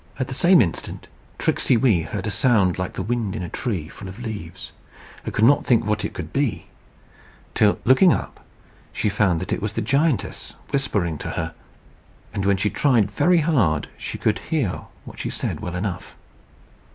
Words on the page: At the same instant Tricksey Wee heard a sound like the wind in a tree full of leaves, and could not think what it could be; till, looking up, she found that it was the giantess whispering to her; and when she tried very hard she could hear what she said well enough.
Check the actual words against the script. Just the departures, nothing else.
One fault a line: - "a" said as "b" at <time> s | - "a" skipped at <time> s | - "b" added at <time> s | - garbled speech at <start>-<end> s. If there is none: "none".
none